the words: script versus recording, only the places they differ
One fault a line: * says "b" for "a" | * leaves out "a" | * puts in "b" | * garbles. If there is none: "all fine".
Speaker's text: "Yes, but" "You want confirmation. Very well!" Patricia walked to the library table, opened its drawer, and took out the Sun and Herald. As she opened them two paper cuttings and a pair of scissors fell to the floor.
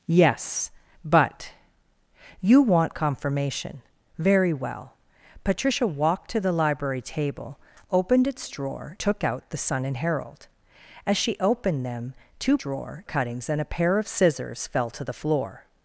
* leaves out "and"
* says "drawer" for "paper"